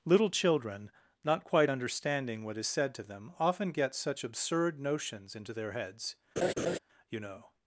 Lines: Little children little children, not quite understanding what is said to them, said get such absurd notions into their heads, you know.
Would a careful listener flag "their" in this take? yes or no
no